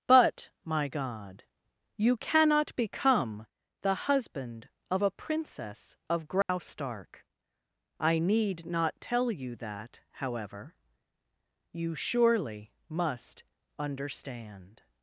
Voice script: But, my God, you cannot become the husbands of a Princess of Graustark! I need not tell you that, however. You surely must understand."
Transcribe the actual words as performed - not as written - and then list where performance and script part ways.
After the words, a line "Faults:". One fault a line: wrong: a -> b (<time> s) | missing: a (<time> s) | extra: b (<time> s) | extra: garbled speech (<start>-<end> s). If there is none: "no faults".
But, my God, you cannot become the husband of a Princess of Graustark! I need not tell you that, however. You surely must understand."
Faults:
wrong: husbands -> husband (4.0 s)